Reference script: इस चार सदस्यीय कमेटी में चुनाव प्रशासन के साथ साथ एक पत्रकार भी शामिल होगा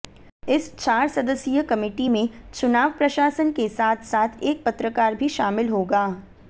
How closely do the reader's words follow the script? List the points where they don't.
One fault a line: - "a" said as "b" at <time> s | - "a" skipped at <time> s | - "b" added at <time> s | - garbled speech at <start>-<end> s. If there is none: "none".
none